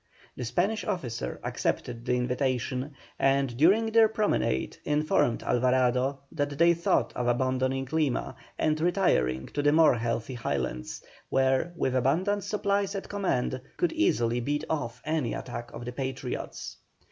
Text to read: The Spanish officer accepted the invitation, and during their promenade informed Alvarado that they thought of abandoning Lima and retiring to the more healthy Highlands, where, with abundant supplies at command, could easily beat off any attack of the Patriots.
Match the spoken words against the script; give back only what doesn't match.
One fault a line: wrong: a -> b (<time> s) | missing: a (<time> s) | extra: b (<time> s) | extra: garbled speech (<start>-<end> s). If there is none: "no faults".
no faults